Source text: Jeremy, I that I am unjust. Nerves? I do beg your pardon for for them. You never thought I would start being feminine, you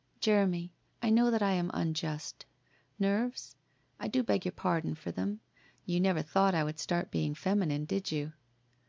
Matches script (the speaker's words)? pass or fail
fail